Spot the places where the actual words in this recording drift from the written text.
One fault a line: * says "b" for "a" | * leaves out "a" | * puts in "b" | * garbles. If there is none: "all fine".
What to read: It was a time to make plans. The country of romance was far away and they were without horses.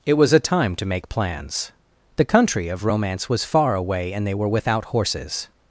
all fine